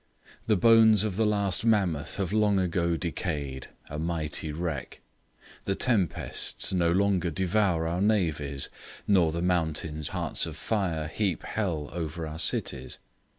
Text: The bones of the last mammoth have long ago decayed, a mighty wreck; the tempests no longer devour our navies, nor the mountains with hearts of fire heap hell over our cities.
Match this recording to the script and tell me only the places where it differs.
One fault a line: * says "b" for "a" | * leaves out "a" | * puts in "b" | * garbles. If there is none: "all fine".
* leaves out "with"